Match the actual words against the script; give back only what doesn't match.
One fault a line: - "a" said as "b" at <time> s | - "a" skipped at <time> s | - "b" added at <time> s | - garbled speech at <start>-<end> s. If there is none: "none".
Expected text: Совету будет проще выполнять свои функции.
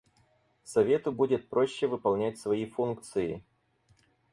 none